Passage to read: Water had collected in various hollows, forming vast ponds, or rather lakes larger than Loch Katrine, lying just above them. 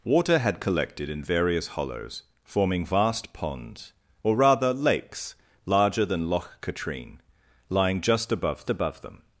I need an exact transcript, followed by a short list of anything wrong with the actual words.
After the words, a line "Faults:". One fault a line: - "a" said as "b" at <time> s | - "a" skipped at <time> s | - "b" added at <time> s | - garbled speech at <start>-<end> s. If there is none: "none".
Water had collected in various hollows, forming vast ponds, or rather lakes larger than Loch Katrine, lying just above above them.
Faults:
- "above" added at 8.7 s